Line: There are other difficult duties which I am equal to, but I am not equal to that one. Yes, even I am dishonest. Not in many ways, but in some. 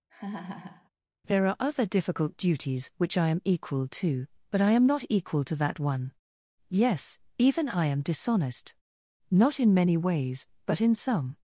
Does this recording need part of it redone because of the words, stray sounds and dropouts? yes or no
yes